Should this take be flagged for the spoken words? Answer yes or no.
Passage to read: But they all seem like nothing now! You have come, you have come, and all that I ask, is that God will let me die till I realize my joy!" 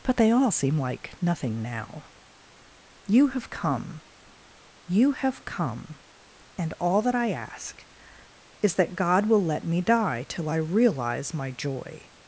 no